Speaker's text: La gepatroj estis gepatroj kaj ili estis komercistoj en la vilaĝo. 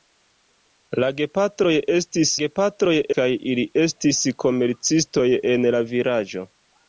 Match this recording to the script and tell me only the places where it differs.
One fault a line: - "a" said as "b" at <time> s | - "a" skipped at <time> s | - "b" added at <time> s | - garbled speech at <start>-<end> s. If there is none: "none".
none